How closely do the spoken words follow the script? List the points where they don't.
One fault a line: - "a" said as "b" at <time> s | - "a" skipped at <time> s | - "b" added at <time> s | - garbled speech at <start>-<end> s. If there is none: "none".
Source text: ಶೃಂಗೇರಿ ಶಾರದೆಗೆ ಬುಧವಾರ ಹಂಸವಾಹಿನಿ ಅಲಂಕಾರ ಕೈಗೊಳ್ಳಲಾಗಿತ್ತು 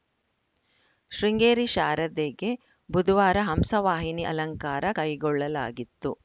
none